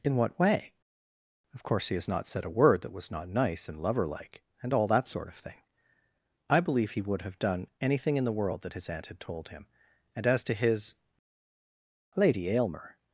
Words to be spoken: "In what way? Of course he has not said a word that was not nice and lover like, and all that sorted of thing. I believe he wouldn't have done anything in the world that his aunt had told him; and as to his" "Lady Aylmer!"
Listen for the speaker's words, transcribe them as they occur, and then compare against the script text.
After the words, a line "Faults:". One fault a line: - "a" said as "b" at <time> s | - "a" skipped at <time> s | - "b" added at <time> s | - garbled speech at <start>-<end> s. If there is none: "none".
"In what way? Of course he has not said a word that was not nice and lover like, and all that sort of thing. I believe he would have done anything in the world that his aunt had told him; and as to his" "Lady Aylmer!"
Faults:
- "sorted" said as "sort" at 5.1 s
- "wouldn't" said as "would" at 7.0 s